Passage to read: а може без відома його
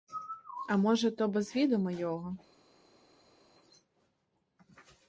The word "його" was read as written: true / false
true